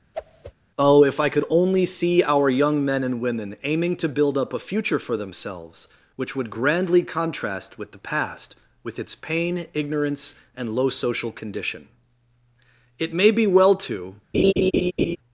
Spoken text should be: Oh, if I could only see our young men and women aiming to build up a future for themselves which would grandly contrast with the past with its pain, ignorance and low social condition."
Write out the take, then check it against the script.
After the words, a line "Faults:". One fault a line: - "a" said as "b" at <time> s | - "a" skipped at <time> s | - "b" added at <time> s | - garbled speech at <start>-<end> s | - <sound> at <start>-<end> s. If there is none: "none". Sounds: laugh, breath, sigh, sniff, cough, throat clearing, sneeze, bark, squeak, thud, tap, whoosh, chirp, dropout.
Oh, if I could only see our young men and women aiming to build up a future for themselves which would grandly contrast with the past with its pain, ignorance and low social condition." It may be well to
Faults:
- whoosh at 0.1-0.5 s
- "It may be well to" added at 13.0 s
- laugh at 14.3-15.2 s